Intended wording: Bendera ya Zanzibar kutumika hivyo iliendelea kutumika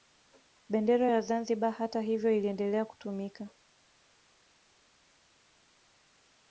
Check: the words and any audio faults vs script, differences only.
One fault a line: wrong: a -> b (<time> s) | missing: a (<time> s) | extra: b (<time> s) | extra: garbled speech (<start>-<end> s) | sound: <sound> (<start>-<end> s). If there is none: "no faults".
wrong: kutumika -> hata (1.7 s)